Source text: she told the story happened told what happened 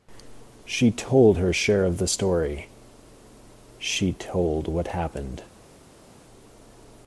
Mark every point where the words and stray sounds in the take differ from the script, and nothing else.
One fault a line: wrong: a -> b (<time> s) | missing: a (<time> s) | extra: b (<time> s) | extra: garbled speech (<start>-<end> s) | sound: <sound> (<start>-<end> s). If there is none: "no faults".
extra: her share of (1.4 s)
wrong: happened -> she (3.8 s)